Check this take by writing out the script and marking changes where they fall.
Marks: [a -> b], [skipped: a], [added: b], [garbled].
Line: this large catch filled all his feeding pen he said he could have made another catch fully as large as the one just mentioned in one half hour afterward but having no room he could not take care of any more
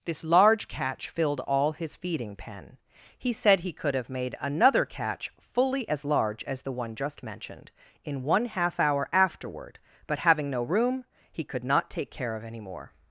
this large catch filled all his feeding pen he said he could have made another catch fully as large as the one just mentioned in one half hour afterward but having no room he could not take care of any more